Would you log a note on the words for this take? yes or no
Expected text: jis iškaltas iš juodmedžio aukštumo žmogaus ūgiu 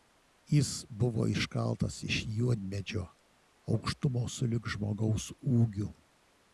yes